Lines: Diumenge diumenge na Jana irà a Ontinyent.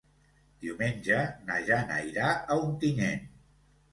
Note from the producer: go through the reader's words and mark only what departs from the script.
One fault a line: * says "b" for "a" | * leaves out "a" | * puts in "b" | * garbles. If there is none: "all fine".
* leaves out "diumenge"